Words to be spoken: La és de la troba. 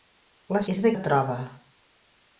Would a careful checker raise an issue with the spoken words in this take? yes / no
no